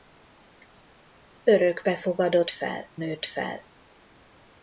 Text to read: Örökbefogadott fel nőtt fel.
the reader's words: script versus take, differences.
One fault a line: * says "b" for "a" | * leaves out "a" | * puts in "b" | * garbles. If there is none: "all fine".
all fine